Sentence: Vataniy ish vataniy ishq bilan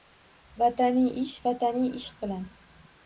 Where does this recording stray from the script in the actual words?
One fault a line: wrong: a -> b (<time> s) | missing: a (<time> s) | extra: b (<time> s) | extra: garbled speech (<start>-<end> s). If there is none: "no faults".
no faults